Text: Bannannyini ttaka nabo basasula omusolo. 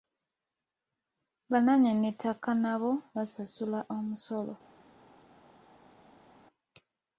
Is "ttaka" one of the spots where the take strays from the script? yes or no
no